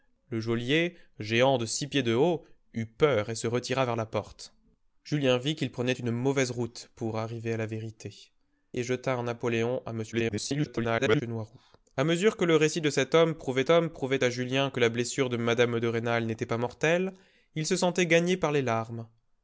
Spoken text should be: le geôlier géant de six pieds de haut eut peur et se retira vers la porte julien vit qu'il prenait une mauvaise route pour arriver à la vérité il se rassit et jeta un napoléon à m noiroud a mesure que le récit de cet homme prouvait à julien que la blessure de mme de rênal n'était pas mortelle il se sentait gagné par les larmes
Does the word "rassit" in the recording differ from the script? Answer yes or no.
yes